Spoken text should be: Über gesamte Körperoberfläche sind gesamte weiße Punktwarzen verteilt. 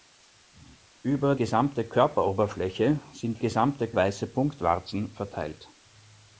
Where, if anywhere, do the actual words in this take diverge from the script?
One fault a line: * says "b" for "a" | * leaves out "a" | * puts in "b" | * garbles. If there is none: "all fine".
all fine